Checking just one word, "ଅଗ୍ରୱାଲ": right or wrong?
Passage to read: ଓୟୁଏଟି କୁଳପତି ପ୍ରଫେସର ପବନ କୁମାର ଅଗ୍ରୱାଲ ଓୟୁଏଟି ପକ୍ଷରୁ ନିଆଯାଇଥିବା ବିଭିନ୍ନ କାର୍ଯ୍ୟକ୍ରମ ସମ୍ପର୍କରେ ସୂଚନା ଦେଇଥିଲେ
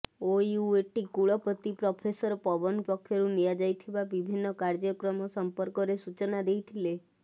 wrong